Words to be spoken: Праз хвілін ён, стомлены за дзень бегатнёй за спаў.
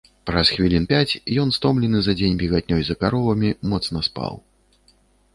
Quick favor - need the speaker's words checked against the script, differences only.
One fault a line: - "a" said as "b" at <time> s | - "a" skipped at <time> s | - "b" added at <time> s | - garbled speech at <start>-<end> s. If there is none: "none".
- "пяць" added at 0.9 s
- "каровамі моцна" added at 3.0 s